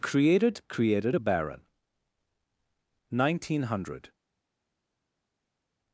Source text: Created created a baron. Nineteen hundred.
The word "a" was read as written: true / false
true